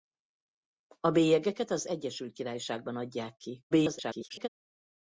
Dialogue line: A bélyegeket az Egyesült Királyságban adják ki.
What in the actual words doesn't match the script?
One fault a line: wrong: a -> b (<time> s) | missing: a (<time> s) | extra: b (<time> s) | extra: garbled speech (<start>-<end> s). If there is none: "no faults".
extra: garbled speech (3.7-4.5 s)